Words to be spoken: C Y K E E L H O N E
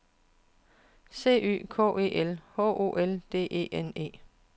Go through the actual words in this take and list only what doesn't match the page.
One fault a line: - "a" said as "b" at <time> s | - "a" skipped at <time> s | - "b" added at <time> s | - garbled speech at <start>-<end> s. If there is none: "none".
- "E" skipped at 2.1 s
- "L D E" added at 2.9 s